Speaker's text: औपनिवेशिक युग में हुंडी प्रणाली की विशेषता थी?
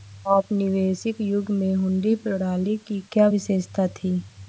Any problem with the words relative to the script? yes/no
yes